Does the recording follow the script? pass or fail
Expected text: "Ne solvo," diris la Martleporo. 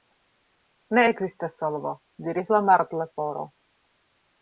fail